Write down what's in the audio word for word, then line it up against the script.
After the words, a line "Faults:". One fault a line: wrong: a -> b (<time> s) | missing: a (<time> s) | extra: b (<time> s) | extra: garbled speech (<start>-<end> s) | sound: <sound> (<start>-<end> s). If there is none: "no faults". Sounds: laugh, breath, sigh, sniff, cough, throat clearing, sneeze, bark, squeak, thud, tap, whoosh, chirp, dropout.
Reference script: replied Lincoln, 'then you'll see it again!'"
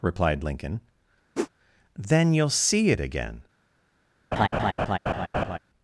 replied Lincoln, 'then you'll see it again!'"
Faults:
sound: whoosh (1.4-1.5 s)
sound: laugh (4.3-5.6 s)